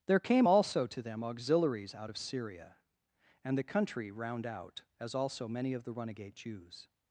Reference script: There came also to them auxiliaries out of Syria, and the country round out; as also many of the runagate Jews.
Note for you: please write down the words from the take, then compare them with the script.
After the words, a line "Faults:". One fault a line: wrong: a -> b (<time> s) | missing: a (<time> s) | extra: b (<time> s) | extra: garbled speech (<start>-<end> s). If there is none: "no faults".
There came also to them auxiliaries out of Syria, and the country round out; as also many of the runagate Jews.
Faults:
no faults